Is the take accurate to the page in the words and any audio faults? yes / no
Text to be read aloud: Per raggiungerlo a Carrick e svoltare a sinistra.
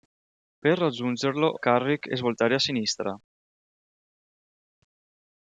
yes